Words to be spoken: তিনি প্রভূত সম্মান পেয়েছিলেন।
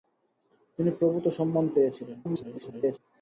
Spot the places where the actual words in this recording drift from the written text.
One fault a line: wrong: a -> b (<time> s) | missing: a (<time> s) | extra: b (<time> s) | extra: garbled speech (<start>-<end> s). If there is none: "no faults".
extra: garbled speech (2.2-3.0 s)